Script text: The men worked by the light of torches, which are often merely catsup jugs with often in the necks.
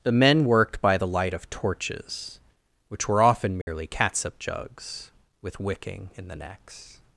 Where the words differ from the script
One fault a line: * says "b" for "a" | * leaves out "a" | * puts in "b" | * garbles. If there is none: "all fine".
* says "were" for "are"
* says "wicking" for "often"